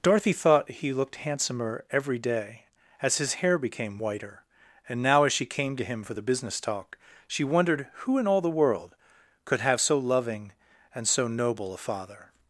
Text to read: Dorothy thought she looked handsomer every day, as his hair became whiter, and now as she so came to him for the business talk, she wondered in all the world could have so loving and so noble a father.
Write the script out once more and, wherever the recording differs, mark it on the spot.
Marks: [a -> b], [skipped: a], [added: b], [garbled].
Dorothy thought [she -> he] looked handsomer every day, as his hair became whiter, and now as she [skipped: so] came to him for the business talk, she wondered [added: who] in all the world could have so loving and so noble a father.